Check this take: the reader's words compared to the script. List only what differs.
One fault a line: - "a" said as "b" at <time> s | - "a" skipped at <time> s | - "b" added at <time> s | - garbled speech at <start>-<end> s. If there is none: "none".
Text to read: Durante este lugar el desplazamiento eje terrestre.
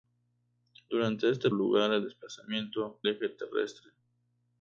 none